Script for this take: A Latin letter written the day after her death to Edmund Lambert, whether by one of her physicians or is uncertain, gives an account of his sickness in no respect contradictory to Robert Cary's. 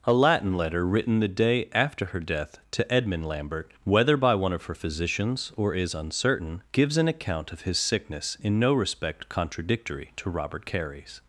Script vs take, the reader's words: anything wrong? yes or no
no